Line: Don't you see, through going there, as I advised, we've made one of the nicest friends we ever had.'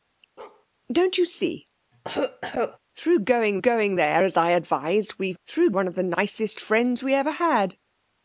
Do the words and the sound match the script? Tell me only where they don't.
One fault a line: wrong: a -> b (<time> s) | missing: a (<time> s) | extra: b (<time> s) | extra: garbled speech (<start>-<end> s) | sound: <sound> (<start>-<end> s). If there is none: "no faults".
sound: bark (0.4-0.7 s)
sound: cough (1.9-2.8 s)
extra: going (3.6 s)
wrong: made -> through (5.4 s)